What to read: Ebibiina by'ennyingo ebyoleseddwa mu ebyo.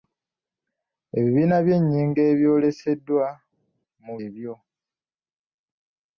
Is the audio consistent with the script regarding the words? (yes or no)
yes